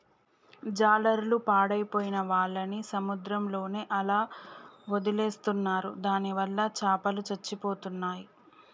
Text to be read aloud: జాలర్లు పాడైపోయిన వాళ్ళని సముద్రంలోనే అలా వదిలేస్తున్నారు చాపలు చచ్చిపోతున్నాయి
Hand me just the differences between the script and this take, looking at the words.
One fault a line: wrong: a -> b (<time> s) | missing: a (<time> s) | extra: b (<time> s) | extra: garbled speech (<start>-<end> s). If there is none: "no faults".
extra: దానివల్ల (6.1 s)